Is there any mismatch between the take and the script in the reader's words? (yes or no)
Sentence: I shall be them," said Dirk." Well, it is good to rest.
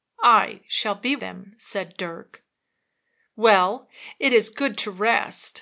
no